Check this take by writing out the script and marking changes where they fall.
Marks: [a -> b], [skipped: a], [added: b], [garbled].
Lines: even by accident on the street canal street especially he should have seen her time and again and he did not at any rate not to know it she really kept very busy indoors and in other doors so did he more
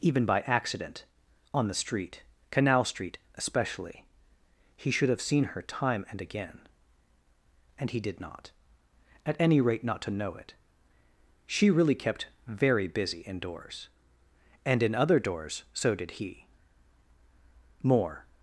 even by accident on the street canal street especially he should have seen her time and again and he did not at any rate not to know it she really kept very busy indoors and in other doors so did he more